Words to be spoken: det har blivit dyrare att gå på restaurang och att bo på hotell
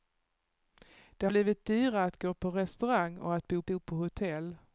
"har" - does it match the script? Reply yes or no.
no